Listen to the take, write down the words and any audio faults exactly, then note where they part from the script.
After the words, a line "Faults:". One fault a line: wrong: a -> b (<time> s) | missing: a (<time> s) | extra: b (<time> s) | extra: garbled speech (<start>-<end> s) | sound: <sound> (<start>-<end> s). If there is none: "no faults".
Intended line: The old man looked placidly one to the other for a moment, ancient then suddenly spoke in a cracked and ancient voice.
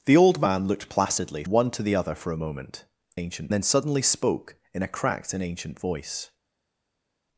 The old man looked placidly one to the other for a moment, ancient then suddenly spoke in a cracked and ancient voice.
Faults:
no faults